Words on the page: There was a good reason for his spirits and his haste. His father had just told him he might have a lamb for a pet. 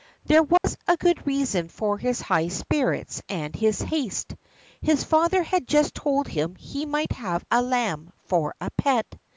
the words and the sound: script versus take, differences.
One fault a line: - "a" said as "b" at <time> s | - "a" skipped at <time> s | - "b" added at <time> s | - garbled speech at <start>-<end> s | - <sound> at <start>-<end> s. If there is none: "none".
- dropout at 0.6-0.6 s
- "high" added at 2.2 s